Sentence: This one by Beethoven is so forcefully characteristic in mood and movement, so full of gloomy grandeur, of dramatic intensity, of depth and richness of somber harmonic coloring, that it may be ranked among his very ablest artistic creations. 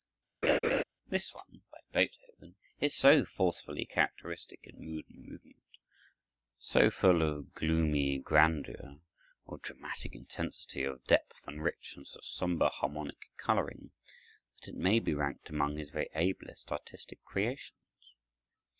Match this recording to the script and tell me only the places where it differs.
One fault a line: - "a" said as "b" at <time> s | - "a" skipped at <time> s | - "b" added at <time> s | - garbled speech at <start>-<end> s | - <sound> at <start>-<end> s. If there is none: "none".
- laugh at 0.4-0.8 s